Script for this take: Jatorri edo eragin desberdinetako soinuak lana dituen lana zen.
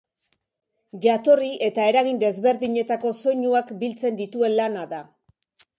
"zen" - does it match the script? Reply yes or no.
no